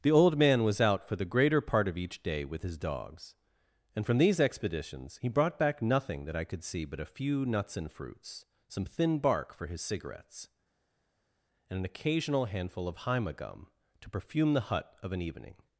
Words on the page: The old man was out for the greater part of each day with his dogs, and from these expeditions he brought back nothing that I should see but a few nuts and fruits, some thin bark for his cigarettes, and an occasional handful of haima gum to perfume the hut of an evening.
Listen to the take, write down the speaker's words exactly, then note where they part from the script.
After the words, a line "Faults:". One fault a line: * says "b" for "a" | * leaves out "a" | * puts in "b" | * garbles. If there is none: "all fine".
The old man was out for the greater part of each day with his dogs, and from these expeditions he brought back nothing that I could see but a few nuts and fruits, some thin bark for his cigarettes, and an occasional handful of haima gum to perfume the hut of an evening.
Faults:
* says "could" for "should"